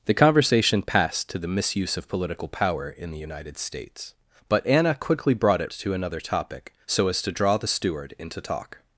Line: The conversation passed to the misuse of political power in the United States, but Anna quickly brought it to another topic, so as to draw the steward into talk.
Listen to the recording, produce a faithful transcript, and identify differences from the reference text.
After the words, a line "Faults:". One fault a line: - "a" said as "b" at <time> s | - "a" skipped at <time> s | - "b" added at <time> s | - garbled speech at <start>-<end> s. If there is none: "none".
The conversation passed to the misuse of political power in the United States, but Anna quickly brought it to another topic, so as to draw the steward into talk.
Faults:
none